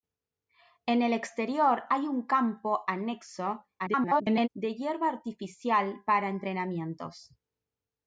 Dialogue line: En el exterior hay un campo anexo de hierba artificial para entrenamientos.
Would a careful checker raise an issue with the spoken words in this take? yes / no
yes